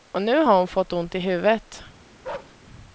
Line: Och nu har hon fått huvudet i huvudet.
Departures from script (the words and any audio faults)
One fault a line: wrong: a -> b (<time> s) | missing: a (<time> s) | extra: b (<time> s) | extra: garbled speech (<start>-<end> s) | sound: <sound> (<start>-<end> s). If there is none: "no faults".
wrong: huvudet -> ont (0.9 s)
sound: bark (2.2-2.6 s)